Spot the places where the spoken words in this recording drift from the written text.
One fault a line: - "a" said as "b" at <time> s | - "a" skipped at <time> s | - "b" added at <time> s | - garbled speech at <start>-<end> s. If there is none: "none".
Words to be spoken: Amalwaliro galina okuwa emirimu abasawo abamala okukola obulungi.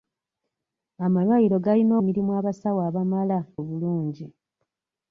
- "okuwa" skipped at 1.9 s
- "okukola" skipped at 3.4 s